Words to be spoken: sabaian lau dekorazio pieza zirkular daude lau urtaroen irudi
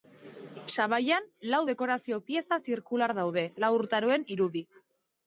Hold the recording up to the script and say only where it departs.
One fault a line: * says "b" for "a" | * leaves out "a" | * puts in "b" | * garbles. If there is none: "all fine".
all fine